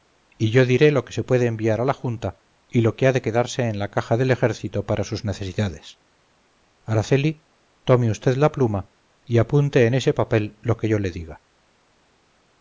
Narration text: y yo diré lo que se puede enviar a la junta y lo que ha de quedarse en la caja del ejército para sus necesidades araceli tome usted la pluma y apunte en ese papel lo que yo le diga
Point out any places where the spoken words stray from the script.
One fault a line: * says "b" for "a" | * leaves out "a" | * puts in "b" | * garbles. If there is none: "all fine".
all fine